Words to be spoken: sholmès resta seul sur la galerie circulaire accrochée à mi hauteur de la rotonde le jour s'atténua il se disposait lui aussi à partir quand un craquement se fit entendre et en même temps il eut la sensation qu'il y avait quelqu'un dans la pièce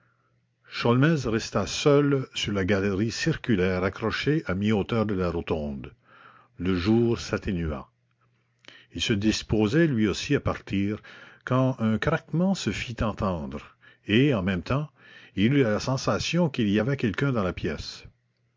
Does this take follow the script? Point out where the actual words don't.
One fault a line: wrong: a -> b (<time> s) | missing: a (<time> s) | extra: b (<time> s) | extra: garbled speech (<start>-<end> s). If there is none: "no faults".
no faults